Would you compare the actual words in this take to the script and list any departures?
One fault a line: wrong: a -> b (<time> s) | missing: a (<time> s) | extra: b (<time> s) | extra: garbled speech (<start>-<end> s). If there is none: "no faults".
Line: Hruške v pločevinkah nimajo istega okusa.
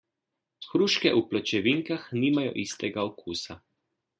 no faults